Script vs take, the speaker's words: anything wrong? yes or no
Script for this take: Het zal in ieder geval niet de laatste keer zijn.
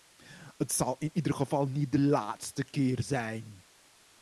no